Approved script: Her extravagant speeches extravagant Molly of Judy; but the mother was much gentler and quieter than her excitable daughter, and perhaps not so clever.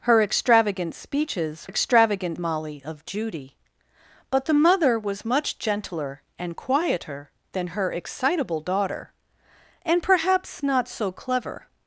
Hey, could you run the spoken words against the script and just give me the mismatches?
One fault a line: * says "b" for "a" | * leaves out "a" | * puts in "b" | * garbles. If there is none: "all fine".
all fine